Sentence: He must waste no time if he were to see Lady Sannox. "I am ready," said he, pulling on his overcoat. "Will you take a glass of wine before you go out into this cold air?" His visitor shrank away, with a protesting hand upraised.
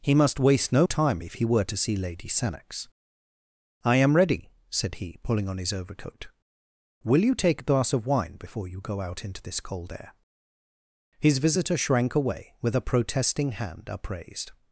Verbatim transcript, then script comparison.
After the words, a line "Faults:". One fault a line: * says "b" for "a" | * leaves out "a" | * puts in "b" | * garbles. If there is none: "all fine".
He must waste no time if he were to see Lady Sannox. "I am ready," said he, pulling on his overcoat. "Will you take a glass of wine before you go out into this cold air?" His visitor shrank away, with a protesting hand upraised.
Faults:
all fine